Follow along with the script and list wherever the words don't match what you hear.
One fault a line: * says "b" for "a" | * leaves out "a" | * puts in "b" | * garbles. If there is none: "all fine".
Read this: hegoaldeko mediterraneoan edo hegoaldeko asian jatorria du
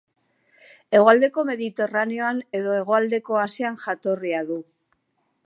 all fine